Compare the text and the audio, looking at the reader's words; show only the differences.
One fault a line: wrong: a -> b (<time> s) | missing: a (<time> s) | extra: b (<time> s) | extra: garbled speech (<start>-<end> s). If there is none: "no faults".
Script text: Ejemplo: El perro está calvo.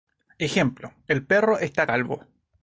no faults